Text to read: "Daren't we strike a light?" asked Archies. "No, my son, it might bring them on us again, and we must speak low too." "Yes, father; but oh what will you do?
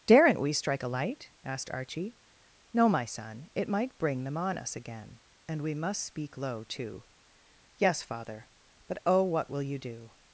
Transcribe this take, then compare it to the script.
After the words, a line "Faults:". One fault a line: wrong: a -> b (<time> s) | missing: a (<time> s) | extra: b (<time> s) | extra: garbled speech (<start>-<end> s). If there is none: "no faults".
"Daren't we strike a light?" asked Archie. "No, my son, it might bring them on us again, and we must speak low too." "Yes, father; but oh what will you do?
Faults:
wrong: Archies -> Archie (1.7 s)